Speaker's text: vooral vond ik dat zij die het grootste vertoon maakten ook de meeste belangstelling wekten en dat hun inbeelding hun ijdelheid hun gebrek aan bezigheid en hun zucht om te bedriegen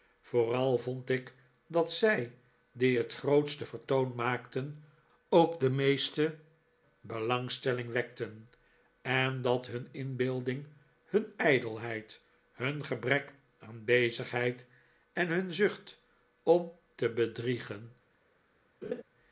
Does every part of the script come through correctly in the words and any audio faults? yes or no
no